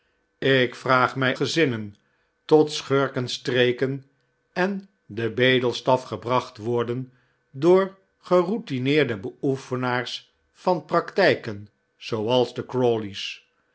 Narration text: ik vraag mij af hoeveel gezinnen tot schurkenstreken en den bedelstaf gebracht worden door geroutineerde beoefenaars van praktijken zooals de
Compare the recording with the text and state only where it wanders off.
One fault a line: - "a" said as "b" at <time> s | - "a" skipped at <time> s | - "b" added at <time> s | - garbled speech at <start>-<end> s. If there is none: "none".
- "af hoeveel" skipped at 1.4 s